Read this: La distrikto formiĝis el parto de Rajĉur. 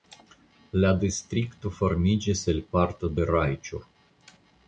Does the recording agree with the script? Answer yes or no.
yes